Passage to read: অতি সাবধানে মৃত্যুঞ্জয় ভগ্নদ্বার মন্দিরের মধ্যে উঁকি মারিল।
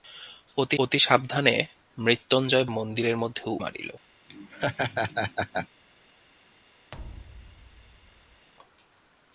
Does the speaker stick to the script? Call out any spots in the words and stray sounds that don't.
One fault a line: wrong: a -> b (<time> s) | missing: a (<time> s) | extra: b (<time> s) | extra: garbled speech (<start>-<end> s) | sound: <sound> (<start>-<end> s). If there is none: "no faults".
extra: অতি (0.8 s)
missing: ভগ্নদ্বার (2.7 s)
missing: উঁকি (3.4 s)
sound: laugh (4.3-5.7 s)
sound: thud (6.9-8.5 s)